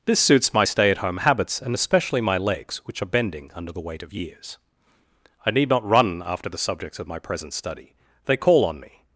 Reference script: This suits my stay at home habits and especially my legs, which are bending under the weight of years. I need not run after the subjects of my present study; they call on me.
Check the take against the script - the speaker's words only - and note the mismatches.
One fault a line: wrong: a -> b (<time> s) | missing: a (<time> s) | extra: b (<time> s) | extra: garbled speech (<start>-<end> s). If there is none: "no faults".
no faults